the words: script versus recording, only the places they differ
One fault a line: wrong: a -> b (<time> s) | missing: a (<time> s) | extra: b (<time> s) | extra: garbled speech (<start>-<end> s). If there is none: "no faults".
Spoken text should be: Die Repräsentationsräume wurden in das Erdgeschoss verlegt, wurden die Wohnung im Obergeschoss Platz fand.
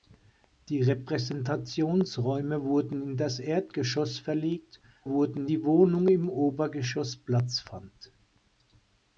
no faults